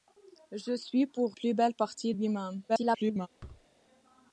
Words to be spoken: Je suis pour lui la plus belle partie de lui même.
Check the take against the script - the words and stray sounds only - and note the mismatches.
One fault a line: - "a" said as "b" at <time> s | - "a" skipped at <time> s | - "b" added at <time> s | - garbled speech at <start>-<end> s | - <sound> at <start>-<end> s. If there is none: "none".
- "lui la" skipped at 1.4 s
- "de" skipped at 2.1 s
- garbled speech at 2.7-3.3 s
- thud at 3.4-3.7 s